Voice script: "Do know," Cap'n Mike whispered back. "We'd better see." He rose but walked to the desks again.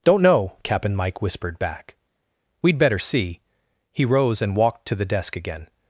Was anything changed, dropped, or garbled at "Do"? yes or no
yes